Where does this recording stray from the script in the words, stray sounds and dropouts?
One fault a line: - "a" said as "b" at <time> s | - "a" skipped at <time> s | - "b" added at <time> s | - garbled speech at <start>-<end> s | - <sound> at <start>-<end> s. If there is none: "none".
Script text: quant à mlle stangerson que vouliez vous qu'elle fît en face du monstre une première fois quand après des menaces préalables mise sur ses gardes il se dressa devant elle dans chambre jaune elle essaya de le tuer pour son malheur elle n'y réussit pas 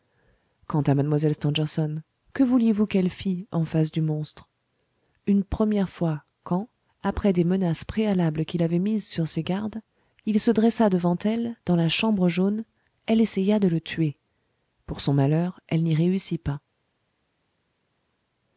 - "qui l'avaient" added at 8.4 s
- "la" added at 11.8 s